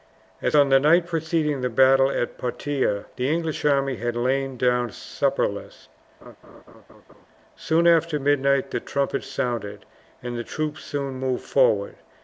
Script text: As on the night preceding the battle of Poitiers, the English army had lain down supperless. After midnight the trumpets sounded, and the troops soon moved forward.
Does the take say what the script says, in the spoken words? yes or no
no